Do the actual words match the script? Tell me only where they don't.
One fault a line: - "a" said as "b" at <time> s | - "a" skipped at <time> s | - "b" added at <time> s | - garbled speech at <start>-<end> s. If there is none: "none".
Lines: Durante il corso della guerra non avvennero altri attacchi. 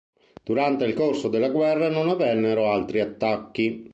none